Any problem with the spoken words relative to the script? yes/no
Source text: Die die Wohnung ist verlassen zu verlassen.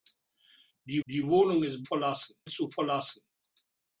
no